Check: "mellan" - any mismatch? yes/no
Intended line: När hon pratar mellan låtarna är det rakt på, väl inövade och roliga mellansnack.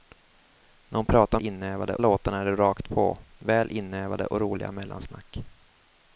yes